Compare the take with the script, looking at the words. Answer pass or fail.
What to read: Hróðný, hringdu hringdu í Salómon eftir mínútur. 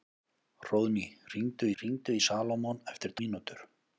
pass